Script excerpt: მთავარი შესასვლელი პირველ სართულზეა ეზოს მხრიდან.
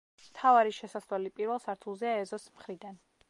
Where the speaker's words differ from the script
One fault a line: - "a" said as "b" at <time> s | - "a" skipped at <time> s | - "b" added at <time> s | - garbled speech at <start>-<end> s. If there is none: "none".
none